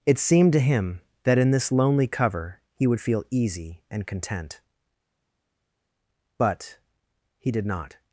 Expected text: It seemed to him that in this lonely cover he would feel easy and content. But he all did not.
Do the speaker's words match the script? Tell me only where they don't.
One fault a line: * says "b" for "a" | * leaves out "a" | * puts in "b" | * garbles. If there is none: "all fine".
* leaves out "all"